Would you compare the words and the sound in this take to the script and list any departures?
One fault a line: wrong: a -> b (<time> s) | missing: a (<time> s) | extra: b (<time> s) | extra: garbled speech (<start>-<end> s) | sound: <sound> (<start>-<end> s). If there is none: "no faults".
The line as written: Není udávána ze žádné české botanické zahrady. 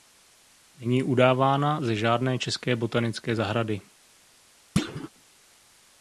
sound: thud (4.8-5.1 s)